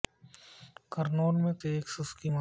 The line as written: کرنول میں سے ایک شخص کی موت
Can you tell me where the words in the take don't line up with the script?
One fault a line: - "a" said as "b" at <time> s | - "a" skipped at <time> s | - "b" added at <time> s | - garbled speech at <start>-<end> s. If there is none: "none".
none